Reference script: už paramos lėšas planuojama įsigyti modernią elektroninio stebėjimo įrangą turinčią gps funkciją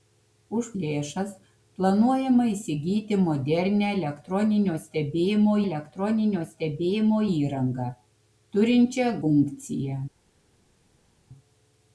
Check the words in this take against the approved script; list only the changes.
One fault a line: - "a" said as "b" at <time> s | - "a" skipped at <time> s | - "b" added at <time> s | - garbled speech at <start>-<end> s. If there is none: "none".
- "paramos" skipped at 0.7 s
- "elektroninio stebėjimo" added at 5.7 s
- "gps" skipped at 9.1 s